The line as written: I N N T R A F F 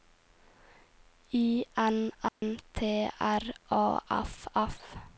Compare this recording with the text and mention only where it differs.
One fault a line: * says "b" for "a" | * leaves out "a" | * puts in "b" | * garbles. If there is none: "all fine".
all fine